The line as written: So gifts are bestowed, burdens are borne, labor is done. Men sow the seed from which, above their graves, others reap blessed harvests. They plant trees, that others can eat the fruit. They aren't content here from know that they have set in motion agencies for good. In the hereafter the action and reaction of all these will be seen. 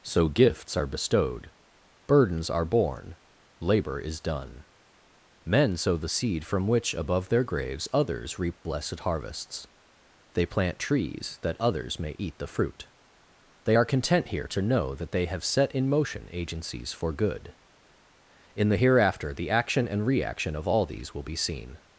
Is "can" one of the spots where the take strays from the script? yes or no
yes